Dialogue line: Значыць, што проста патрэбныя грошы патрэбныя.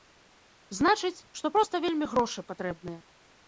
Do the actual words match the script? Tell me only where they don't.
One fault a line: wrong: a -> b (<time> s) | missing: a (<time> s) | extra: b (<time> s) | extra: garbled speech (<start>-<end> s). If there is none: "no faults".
wrong: патрэбныя -> вельмі (1.9 s)